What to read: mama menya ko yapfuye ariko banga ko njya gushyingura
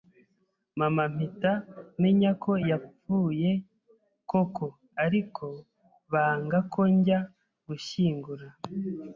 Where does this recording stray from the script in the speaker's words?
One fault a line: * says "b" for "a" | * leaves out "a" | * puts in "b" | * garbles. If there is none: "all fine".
* puts in "mpita"
* puts in "koko"